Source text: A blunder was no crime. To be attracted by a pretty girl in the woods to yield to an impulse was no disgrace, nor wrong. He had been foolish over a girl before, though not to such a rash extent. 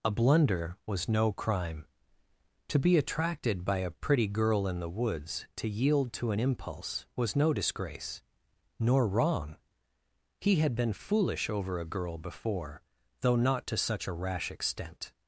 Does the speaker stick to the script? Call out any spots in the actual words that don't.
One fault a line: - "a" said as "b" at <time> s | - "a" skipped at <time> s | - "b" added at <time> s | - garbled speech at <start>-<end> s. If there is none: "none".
none